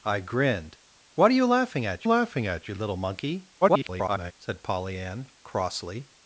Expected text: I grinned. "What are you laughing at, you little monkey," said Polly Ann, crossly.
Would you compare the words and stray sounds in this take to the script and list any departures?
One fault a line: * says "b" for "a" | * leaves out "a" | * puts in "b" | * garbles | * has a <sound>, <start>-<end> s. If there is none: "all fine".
* puts in "laughing at"
* garbles